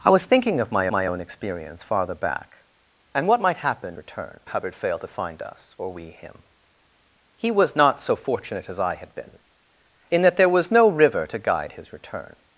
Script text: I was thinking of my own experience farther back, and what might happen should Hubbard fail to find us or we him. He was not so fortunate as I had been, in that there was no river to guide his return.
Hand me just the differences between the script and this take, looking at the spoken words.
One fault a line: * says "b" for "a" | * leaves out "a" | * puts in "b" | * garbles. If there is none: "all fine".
* puts in "my"
* says "return" for "should"